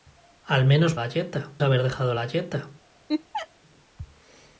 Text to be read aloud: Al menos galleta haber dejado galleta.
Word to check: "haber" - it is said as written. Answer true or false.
true